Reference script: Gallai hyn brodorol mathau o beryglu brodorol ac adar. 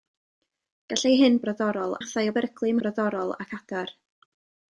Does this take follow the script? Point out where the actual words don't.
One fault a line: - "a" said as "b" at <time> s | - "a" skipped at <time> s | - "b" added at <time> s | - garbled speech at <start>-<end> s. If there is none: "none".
none